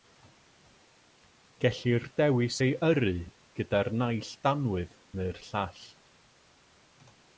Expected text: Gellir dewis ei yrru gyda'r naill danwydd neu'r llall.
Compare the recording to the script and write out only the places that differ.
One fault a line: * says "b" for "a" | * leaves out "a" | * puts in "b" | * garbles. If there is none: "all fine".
all fine